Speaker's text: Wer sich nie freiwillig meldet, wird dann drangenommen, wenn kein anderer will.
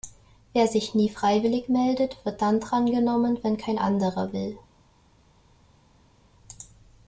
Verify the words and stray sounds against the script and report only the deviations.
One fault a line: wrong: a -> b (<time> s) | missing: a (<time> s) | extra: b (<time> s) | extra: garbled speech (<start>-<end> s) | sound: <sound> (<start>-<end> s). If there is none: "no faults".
no faults